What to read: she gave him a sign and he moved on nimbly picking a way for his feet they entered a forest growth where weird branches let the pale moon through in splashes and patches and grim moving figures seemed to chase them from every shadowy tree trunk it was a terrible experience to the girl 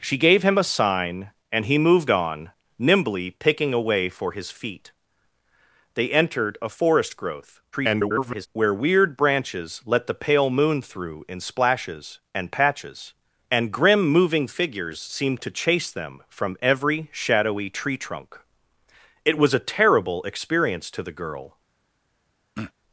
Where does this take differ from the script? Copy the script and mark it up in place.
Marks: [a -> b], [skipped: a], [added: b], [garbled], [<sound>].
she gave him a sign and he moved on nimbly picking a way for his feet they entered a forest growth [garbled] where weird branches let the pale moon through in splashes and patches and grim moving figures seemed to chase them from every shadowy tree trunk it was a terrible experience to the girl [throat clearing]